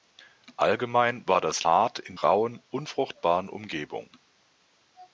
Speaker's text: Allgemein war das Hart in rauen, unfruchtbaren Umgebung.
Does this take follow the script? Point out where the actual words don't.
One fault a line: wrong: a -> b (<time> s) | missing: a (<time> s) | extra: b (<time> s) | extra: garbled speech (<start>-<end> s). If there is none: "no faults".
no faults